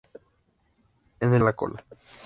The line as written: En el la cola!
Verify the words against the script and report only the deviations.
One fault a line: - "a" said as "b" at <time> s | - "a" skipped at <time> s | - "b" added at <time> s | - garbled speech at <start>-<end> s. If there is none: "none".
none